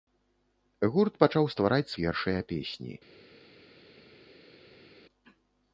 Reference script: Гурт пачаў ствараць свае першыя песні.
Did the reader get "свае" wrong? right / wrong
wrong